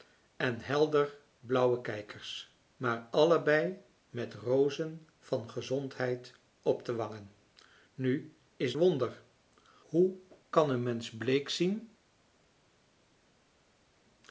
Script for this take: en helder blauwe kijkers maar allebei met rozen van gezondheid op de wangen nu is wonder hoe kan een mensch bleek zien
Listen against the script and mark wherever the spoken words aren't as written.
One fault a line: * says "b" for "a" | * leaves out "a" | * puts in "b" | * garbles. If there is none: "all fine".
all fine